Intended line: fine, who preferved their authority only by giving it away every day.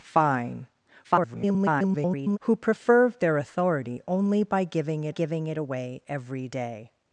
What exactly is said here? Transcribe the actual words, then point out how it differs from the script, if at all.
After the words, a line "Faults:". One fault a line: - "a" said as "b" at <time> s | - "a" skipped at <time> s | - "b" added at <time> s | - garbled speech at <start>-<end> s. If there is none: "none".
fine, [garbled] who preferved their authority only by giving it giving it away every day.
Faults:
- garbled speech at 1.0-2.4 s
- "giving it" added at 5.1 s